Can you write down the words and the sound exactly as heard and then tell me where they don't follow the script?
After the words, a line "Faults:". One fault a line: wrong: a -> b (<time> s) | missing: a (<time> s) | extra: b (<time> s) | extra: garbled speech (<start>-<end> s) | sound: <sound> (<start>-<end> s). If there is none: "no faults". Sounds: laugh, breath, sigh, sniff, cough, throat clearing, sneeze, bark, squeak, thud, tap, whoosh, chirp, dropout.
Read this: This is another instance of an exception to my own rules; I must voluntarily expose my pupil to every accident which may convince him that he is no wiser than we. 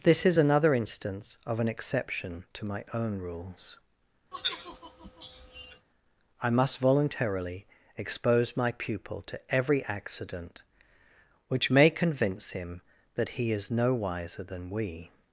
This is another instance of an exception to my own rules; I must voluntarily expose my pupil to every accident which may convince him that he is no wiser than we.
Faults:
sound: sigh (4.3-5.9 s)